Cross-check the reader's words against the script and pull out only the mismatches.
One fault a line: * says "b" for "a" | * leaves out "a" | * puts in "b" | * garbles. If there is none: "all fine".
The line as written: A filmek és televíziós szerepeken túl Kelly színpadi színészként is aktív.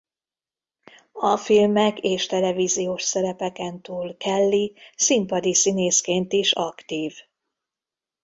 all fine